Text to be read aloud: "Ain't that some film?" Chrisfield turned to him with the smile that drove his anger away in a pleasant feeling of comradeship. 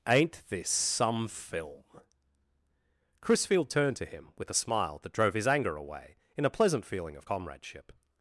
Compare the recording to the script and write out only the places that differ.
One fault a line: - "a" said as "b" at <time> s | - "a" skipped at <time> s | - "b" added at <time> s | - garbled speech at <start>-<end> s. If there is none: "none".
- "that" said as "this" at 0.5 s
- "the" said as "a" at 4.5 s